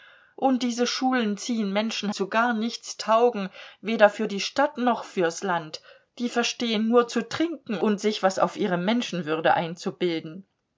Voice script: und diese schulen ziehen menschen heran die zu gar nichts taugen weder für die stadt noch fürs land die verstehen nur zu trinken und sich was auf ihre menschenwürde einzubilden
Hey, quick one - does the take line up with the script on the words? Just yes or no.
no